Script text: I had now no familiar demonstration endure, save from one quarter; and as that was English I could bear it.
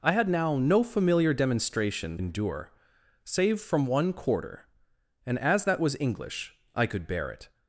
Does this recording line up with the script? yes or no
yes